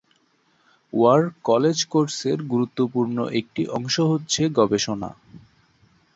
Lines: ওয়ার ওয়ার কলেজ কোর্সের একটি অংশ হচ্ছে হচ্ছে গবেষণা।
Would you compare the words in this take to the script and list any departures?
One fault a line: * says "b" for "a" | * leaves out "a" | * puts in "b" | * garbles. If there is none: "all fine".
* leaves out "ওয়ার"
* puts in "গুরুত্বপূর্ণ"
* leaves out "হচ্ছে"